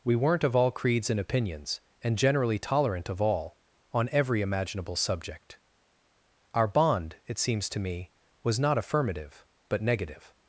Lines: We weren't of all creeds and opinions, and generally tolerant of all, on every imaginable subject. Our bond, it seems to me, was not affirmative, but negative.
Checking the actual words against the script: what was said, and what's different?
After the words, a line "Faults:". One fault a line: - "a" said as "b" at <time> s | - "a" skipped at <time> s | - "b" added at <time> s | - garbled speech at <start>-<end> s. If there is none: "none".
We weren't of all creeds and opinions, and generally tolerant of all, on every imaginable subject. Our bond, it seems to me, was not affirmative, but negative.
Faults:
none